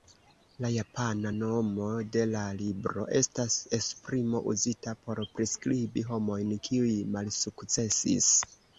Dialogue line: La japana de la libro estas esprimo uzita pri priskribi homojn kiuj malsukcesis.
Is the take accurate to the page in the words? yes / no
no